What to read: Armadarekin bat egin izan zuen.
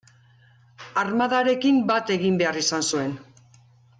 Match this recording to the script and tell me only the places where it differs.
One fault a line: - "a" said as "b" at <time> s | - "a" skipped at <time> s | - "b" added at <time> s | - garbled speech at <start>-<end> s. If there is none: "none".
- "behar" added at 2.4 s